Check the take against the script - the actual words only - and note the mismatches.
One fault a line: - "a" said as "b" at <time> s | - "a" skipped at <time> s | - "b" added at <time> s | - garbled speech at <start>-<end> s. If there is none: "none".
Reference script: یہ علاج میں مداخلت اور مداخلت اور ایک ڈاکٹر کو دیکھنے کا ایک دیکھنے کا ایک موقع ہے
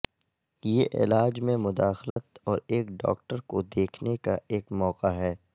- "مداخلت اور" skipped at 2.6 s
- "دیکھنے کا ایک" skipped at 4.7 s